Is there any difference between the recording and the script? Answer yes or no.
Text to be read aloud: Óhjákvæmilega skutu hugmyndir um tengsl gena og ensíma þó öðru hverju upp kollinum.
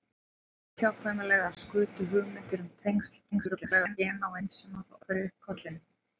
yes